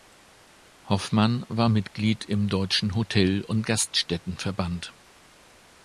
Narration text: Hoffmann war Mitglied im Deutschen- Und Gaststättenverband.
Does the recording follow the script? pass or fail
fail